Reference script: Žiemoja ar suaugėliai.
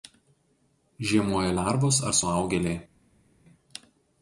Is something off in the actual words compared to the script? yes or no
yes